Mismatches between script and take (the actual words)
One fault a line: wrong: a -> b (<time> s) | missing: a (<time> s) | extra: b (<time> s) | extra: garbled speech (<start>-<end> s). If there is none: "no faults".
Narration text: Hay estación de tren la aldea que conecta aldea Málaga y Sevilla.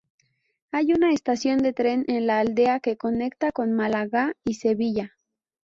extra: una (0.9 s)
extra: en (2.1 s)
wrong: aldea -> con (3.5 s)